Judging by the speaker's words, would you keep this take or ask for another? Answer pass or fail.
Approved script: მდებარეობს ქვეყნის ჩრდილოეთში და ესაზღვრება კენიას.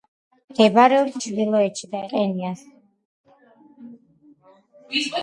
fail